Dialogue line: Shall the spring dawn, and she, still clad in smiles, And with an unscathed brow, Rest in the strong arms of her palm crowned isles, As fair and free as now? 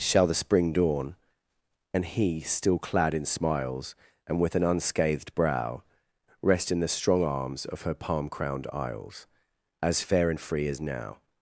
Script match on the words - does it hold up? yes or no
no